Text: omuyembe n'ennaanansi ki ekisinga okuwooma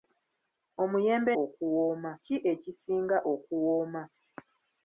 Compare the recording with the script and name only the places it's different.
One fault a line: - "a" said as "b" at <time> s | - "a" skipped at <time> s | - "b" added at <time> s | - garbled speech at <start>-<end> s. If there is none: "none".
- "n'ennaanansi" said as "okuwooma" at 1.4 s